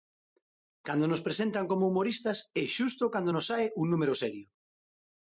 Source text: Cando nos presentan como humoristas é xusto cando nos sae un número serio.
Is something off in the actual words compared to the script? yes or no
no